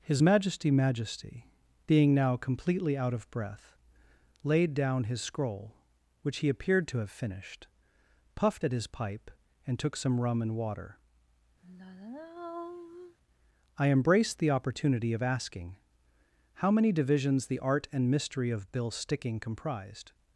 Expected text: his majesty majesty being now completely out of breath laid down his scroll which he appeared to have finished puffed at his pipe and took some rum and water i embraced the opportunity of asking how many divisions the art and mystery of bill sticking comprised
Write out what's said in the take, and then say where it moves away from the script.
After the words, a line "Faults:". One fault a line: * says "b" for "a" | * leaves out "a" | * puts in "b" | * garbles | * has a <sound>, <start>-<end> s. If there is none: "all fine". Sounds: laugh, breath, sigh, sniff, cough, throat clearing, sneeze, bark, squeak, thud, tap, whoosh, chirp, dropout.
his majesty majesty being now completely out of breath laid down his scroll which he appeared to have finished puffed at his pipe and took some rum and water i embraced the opportunity of asking how many divisions the art and mystery of bill sticking comprised
Faults:
* has a sigh, 11.6-13.2 s